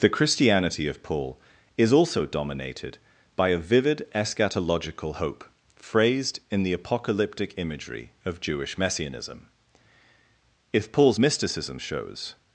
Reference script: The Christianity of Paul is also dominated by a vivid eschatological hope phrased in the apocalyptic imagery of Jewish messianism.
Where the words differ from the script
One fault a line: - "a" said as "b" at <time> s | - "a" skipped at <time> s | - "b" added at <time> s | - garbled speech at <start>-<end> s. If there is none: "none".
- "If Paul's mysticism shows" added at 10.7 s